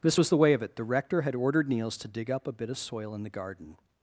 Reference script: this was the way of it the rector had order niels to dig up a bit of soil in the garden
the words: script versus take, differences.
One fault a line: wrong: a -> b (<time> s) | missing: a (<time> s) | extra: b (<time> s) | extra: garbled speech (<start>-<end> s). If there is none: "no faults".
wrong: order -> ordered (1.3 s)